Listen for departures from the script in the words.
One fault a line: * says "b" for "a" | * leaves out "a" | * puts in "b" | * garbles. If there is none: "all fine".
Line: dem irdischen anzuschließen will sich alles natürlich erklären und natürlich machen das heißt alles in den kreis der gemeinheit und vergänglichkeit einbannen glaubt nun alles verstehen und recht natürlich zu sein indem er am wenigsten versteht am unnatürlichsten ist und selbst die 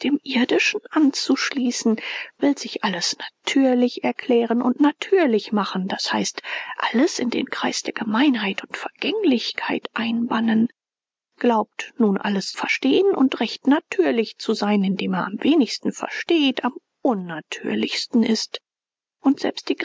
all fine